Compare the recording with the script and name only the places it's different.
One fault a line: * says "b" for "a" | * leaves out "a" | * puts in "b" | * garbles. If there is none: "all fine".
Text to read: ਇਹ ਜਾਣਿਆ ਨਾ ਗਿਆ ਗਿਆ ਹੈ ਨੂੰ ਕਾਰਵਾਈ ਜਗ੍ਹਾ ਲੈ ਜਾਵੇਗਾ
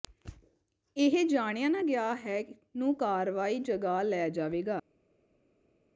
* leaves out "ਗਿਆ"